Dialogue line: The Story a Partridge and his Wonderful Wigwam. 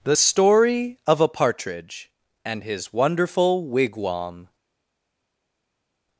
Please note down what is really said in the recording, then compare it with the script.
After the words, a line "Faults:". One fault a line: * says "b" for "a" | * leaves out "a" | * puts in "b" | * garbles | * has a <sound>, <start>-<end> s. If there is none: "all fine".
The Story of a Partridge and his Wonderful Wigwam.
Faults:
* puts in "of"